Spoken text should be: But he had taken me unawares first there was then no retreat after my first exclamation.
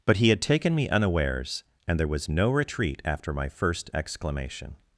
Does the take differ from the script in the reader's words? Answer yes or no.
yes